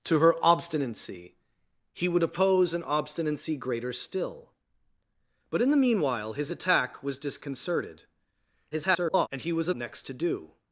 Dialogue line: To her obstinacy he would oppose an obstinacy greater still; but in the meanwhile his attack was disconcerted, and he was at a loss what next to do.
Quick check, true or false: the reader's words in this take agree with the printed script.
false